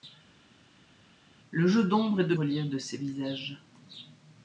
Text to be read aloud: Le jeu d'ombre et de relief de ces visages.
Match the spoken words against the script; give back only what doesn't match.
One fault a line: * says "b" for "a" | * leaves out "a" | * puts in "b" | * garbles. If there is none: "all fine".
all fine